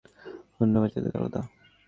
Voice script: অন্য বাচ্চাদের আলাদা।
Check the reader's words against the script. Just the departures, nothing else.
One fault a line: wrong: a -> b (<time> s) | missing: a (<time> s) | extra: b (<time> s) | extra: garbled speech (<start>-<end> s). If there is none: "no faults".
no faults